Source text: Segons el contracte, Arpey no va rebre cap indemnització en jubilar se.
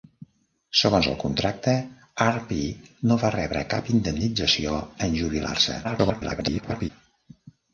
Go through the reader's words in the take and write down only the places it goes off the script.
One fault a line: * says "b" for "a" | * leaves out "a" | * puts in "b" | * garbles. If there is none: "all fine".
* garbles